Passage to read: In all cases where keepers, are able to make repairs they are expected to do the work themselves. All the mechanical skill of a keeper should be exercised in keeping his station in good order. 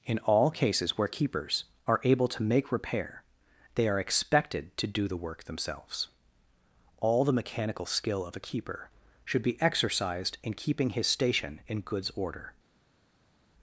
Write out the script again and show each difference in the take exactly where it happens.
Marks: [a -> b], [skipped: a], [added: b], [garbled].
In all cases where keepers, are able to make [repairs -> repair] they are expected to do the work themselves. All the mechanical skill of a keeper should be exercised in keeping his station in [good -> goods] order.